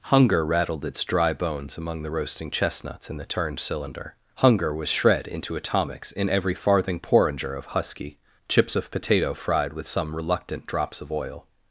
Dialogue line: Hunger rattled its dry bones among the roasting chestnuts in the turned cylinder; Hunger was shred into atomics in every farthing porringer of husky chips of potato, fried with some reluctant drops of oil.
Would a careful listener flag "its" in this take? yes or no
no